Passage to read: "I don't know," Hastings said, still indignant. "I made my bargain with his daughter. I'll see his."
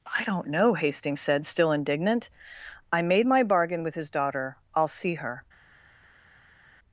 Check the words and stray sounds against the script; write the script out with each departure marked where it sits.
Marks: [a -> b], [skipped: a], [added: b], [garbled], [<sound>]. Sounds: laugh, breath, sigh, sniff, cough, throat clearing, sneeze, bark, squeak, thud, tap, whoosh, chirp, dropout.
"I don't know," Hastings said, still indignant. "I made my bargain with his daughter. I'll see [his." -> her]